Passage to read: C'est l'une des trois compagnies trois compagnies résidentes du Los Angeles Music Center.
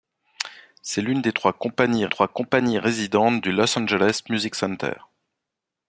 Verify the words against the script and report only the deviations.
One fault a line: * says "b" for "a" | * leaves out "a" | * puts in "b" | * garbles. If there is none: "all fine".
all fine